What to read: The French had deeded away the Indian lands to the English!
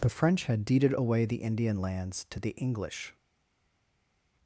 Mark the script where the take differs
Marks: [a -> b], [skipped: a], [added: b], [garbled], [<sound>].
The French had deeded away the Indian lands to the English!